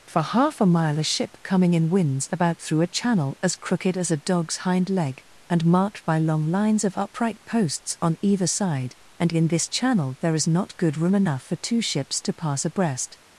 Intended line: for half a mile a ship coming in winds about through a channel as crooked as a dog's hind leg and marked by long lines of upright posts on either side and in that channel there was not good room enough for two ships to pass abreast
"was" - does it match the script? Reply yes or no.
no